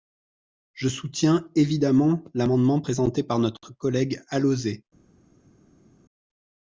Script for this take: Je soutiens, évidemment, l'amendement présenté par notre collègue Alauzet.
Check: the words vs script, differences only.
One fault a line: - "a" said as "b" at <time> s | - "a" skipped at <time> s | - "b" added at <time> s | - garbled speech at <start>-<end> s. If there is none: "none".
none